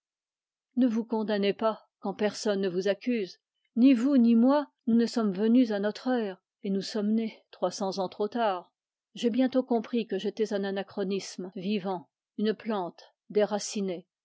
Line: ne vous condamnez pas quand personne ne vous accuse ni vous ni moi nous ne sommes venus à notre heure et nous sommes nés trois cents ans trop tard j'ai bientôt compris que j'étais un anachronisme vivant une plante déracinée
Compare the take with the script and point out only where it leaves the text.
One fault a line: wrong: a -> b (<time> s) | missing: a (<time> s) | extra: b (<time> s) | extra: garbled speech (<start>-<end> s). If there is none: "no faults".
no faults